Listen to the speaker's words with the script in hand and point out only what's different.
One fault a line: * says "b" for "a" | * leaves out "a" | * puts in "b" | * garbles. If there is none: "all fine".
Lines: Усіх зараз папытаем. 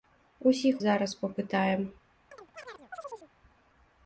all fine